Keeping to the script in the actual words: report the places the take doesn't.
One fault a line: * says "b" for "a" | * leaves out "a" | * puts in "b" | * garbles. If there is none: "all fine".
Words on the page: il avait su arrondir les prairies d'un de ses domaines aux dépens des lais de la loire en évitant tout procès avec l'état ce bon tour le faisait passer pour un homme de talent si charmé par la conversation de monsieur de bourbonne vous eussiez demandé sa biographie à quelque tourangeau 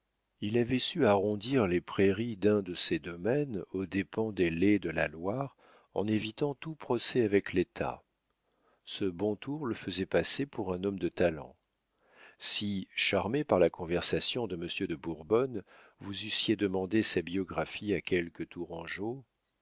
all fine